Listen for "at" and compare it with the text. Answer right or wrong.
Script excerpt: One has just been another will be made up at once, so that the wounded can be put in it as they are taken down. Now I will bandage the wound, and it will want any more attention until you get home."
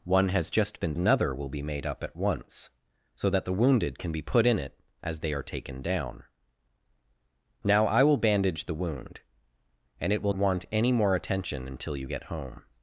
right